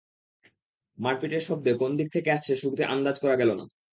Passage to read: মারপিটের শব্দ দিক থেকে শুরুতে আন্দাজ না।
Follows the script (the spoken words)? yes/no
no